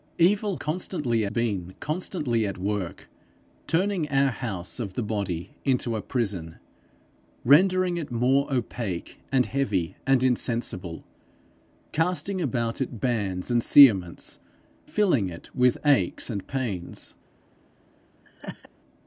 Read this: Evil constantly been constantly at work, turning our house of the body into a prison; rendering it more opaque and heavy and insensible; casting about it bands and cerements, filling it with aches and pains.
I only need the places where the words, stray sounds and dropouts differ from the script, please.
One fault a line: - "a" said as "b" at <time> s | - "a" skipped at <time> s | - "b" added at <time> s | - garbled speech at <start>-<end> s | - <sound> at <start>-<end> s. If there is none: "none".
- laugh at 18.2-18.7 s